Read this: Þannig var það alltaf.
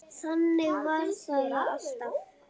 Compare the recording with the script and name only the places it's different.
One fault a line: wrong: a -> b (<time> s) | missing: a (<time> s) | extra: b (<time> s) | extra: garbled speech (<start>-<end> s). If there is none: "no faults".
no faults